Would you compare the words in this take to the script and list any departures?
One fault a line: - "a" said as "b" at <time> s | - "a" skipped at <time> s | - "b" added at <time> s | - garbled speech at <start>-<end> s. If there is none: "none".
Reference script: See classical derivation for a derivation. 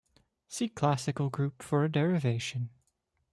- "derivation" said as "group" at 1.3 s